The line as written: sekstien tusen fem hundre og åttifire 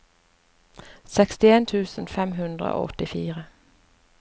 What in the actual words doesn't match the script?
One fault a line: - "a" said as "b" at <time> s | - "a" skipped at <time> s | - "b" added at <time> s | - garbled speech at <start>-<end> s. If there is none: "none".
none